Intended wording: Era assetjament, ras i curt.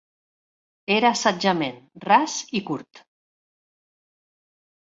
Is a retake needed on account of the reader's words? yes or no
no